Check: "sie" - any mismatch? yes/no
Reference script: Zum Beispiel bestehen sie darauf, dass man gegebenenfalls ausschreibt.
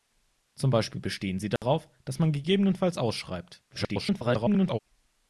no